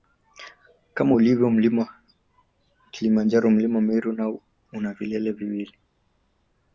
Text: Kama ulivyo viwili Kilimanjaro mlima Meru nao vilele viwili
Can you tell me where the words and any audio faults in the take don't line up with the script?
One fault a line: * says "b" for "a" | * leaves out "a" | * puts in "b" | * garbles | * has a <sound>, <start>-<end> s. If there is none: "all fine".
* says "mlima" for "viwili"
* puts in "una"